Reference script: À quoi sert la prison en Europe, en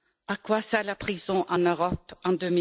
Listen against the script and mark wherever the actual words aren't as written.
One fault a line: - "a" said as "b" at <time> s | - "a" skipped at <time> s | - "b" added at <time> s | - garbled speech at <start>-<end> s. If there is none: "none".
none